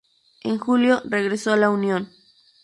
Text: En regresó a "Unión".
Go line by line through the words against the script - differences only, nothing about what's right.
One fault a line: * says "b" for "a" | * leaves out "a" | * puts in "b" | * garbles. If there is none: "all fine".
* puts in "julio"
* puts in "la"